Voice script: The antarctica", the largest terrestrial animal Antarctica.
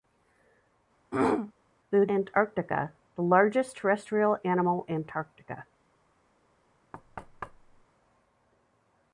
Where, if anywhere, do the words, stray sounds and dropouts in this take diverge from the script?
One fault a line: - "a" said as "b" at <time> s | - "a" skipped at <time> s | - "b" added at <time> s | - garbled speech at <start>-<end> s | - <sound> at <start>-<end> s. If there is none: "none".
- throat clearing at 1.1-1.5 s
- thud at 6.9-7.9 s